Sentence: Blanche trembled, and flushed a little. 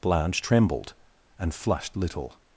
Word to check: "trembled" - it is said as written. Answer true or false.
true